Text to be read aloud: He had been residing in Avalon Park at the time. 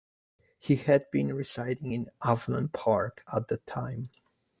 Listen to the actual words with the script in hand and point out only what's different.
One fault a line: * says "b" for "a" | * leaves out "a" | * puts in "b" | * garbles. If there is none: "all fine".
all fine